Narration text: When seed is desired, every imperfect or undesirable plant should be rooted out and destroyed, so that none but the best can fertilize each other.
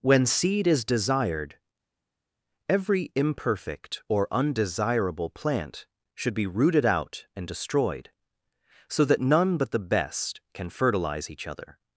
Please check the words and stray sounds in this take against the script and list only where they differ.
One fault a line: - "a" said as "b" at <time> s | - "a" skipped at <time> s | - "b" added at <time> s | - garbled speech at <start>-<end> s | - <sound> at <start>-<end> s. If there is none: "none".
none